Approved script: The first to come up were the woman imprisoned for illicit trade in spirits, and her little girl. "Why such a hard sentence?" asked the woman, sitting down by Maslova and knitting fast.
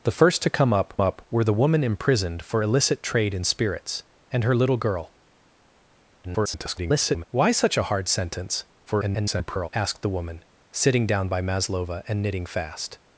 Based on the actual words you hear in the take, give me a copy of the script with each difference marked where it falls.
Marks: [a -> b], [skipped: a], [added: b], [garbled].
The first to come up [added: up] were the woman imprisoned for illicit trade in spirits, and her little girl. [garbled] "Why such a hard sentence?" [garbled] asked the woman, sitting down by Maslova and knitting fast.